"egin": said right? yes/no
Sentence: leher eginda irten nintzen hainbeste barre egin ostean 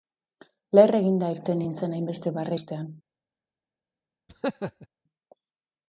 no